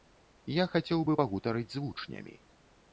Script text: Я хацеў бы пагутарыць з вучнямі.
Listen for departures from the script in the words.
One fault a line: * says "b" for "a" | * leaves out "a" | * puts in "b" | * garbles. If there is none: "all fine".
all fine